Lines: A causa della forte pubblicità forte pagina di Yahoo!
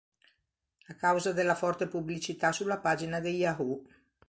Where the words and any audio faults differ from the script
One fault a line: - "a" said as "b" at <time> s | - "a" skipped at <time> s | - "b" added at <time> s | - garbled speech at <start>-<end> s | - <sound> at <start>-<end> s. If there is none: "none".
- "forte" said as "sulla" at 2.5 s